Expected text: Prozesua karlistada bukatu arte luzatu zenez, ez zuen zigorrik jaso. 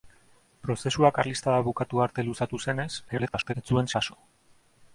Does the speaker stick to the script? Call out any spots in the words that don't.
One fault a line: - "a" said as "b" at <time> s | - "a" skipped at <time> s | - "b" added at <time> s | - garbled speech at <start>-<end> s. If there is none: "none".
- garbled speech at 3.1-3.5 s
- "zigorrik" skipped at 3.9 s